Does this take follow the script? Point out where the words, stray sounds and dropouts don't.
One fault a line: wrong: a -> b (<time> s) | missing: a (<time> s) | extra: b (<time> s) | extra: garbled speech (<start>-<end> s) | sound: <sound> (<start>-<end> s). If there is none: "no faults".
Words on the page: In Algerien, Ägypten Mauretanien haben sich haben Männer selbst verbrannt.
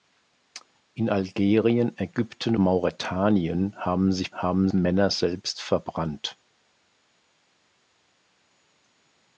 no faults